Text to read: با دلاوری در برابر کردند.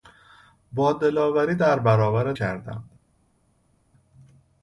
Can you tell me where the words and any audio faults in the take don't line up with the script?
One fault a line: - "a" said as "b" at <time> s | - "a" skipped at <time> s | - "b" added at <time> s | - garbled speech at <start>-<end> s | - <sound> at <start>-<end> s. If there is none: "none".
none